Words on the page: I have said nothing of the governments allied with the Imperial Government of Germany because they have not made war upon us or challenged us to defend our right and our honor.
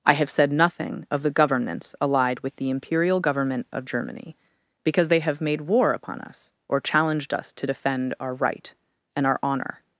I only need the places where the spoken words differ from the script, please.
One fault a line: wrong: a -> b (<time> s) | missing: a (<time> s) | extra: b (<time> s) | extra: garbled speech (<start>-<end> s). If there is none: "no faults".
missing: not (5.4 s)